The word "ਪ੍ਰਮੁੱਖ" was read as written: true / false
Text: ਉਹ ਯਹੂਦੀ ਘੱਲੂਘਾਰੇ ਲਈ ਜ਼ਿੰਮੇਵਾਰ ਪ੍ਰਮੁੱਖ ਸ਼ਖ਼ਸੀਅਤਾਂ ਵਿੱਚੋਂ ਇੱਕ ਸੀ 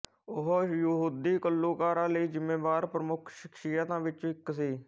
true